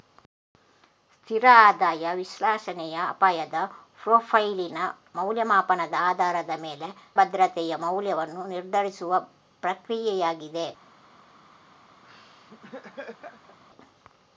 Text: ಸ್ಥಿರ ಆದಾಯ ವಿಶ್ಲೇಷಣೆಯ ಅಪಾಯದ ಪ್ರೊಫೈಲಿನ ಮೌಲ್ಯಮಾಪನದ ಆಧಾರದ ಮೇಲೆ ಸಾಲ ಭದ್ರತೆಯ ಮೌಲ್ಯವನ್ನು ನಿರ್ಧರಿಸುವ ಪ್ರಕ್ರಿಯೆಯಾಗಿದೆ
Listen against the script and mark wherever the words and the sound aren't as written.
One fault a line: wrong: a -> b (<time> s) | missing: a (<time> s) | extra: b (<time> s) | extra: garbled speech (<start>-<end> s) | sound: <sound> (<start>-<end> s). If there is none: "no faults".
missing: ಸಾಲ (6.9 s)
sound: laugh (12.0-13.6 s)